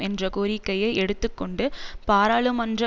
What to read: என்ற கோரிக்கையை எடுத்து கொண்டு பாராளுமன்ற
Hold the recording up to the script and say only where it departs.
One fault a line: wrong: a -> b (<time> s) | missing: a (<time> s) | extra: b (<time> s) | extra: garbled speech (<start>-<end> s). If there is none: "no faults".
no faults